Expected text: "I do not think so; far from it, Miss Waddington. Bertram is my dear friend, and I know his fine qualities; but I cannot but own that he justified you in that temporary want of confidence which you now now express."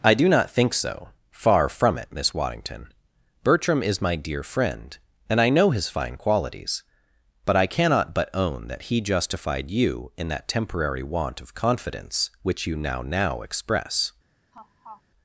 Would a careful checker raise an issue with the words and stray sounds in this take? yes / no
yes